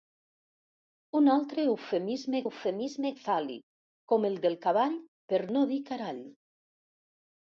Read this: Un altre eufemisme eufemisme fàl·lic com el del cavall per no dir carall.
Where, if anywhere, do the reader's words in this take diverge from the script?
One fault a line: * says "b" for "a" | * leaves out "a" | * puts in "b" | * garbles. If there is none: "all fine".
all fine